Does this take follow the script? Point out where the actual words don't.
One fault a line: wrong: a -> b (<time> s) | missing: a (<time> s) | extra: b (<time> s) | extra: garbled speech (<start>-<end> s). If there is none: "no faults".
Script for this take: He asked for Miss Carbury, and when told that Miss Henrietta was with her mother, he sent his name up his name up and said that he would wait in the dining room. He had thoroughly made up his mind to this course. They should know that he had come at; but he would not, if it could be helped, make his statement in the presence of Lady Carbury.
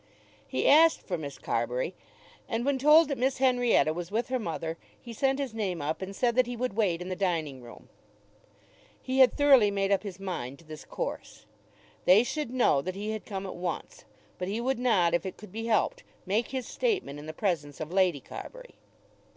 missing: his name up (6.0 s)
extra: once (13.6 s)